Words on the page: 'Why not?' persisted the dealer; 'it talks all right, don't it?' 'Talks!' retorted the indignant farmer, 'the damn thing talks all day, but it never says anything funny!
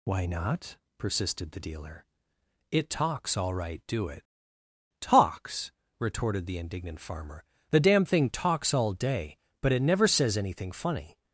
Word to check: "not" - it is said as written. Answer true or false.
true